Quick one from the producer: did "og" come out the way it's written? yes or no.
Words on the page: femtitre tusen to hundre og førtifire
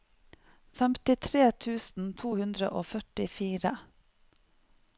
yes